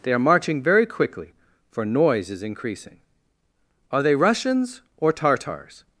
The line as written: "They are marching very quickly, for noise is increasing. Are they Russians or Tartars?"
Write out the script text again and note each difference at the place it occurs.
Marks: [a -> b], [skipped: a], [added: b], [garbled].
"They are marching very quickly, for noise is increasing. Are they Russians or Tartars?"